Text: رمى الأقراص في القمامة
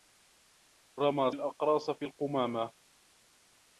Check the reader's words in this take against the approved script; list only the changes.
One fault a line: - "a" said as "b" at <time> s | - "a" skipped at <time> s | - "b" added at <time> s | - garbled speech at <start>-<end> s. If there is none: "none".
none